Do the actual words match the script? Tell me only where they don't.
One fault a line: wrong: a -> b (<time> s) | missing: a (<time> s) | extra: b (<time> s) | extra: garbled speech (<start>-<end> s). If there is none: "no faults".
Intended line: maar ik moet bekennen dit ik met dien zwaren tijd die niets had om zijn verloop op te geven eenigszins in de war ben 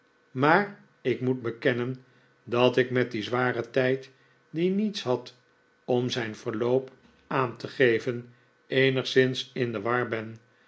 wrong: dit -> dat (2.4 s)
wrong: op -> aan (7.3 s)